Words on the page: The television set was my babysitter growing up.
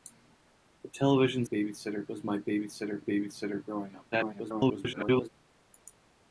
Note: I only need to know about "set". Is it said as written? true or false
false